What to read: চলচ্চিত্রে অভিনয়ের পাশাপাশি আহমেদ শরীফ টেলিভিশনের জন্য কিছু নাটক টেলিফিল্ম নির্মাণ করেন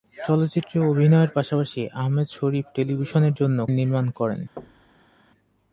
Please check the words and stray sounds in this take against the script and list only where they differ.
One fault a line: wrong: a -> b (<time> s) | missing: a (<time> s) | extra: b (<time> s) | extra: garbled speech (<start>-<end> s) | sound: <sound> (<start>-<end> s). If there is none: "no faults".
missing: কিছু নাটক টেলিফিল্ম (3.6 s)
sound: thud (4.6-5.1 s)